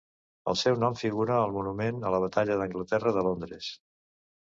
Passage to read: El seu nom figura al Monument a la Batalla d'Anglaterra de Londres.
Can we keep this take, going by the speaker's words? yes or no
yes